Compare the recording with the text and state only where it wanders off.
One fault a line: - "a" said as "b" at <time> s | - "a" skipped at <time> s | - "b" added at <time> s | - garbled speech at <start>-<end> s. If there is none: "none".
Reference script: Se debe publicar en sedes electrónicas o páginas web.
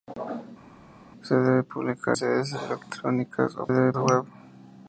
- "en" skipped at 2.2 s
- "páginas" said as "debe" at 3.7 s